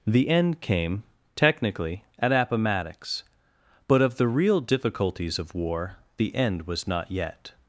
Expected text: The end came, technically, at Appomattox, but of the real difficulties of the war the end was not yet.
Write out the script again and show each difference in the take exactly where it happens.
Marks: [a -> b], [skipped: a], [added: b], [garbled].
The end came, technically, at Appomattox, but of the real difficulties of [skipped: the] war the end was not yet.